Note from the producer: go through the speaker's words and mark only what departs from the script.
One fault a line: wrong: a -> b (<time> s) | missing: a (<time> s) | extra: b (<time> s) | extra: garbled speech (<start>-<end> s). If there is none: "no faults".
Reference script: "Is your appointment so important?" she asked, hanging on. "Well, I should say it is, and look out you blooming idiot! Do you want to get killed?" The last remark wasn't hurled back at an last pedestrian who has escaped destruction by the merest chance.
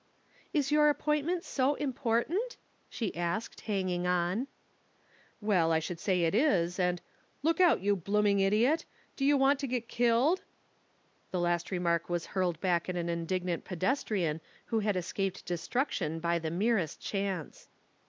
wrong: wasn't -> was (12.1 s)
wrong: last -> indignant (13.1 s)
wrong: has -> had (14.8 s)